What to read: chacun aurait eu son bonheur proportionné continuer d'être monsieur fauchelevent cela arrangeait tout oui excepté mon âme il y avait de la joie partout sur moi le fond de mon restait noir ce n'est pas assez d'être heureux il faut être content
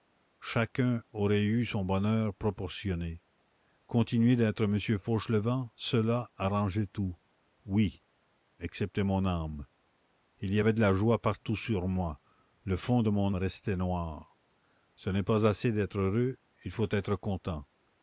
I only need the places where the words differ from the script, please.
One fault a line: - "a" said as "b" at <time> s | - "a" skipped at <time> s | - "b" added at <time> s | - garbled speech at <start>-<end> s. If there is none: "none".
none